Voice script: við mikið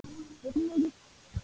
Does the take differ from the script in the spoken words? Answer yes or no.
no